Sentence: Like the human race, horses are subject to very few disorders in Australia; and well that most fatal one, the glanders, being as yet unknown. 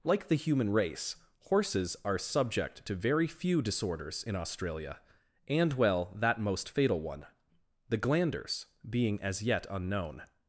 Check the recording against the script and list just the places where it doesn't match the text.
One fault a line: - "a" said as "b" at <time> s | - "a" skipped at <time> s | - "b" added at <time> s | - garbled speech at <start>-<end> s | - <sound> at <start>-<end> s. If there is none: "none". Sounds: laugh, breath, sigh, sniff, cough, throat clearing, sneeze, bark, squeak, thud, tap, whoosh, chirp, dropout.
none